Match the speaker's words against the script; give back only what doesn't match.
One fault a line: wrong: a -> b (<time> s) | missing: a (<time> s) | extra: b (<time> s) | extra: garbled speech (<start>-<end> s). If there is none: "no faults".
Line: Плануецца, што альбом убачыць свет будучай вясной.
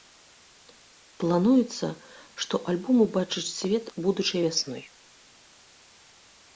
no faults